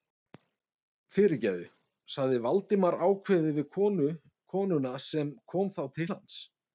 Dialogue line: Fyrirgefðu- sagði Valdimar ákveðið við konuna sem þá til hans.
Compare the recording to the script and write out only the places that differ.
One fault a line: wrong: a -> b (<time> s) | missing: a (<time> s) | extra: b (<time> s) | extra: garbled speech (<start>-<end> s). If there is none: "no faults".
extra: kom (5.5 s)